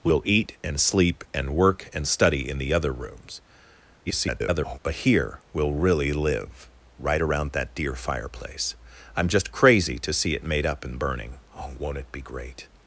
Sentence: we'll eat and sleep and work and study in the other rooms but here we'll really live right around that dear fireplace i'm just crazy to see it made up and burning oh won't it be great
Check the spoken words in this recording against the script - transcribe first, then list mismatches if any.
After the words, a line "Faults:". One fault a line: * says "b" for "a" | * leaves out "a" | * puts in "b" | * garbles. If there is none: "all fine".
we'll eat and sleep and work and study in the other rooms [garbled] but here we'll really live right around that dear fireplace i'm just crazy to see it made up and burning oh won't it be great
Faults:
* garbles